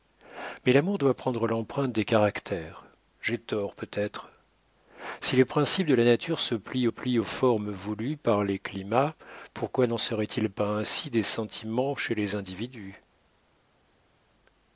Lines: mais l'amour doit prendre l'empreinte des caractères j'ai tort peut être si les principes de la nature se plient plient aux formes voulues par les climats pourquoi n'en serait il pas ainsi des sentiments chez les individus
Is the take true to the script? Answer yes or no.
yes